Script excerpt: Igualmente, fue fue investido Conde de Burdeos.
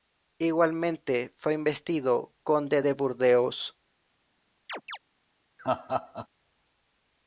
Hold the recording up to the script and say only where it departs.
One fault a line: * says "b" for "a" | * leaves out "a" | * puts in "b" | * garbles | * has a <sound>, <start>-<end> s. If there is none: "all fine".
* leaves out "fue"
* has a chirp, 4.7-5.0 s
* has a laugh, 5.6-6.3 s